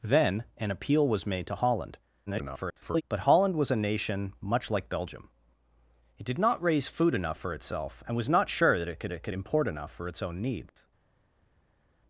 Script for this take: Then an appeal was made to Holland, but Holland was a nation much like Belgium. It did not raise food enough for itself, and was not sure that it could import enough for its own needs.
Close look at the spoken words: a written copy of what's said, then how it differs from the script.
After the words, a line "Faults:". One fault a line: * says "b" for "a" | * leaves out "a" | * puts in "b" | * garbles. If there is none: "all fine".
Then an appeal was made to Holland, [garbled] but Holland was a nation much like Belgium. It did not raise food enough for itself, and was not sure that it could it could import enough for its own needs.
Faults:
* garbles
* puts in "it could"